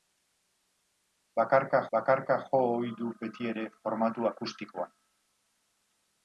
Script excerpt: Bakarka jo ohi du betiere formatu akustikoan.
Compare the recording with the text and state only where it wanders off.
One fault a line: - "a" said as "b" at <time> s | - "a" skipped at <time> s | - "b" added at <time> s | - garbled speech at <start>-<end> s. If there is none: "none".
- "bakarka" added at 1.9 s